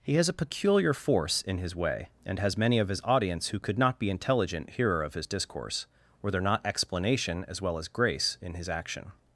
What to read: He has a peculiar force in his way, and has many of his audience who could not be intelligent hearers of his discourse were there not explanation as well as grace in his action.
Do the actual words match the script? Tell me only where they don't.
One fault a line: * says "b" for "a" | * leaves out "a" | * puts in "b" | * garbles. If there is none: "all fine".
* says "hearer" for "hearers"